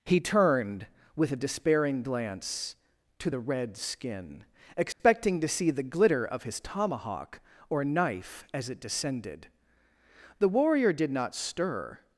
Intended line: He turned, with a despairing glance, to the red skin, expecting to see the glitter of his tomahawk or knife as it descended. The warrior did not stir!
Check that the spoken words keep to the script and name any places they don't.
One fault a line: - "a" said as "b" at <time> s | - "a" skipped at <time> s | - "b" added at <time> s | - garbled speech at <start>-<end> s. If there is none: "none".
none